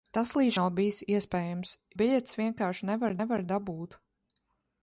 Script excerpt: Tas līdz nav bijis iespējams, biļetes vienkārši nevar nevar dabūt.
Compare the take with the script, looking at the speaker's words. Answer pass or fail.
pass